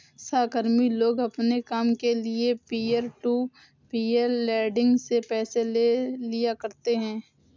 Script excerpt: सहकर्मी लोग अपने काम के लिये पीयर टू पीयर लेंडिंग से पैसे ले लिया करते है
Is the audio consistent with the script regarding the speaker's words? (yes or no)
yes